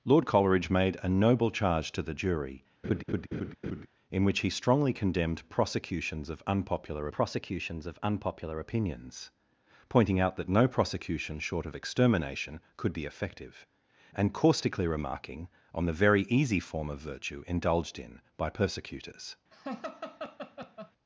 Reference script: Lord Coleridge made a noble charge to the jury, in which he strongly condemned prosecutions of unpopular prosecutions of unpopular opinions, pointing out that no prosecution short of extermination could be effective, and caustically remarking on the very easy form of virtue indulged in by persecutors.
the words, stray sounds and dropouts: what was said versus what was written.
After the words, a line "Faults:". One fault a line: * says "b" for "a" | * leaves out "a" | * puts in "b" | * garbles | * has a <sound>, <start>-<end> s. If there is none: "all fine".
Lord Coleridge made a noble charge to the jury, in which he strongly condemned prosecutions of unpopular prosecutions of unpopular opinions, pointing out that no prosecution short of extermination could be effective, and caustically remarking on the very easy form of virtue indulged in by persecutors.
Faults:
* has a laugh, 2.8-3.9 s
* has a laugh, 19.5-20.9 s